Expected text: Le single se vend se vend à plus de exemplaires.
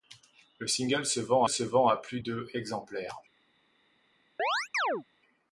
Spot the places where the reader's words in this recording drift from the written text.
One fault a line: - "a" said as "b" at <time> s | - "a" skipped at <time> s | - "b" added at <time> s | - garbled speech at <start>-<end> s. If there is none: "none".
none